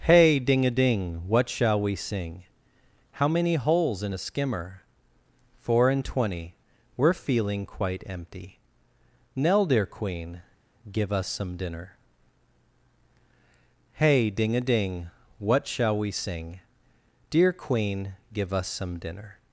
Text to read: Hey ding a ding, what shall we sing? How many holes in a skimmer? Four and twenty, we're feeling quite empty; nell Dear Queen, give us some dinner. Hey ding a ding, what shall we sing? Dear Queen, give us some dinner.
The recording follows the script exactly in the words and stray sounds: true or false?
true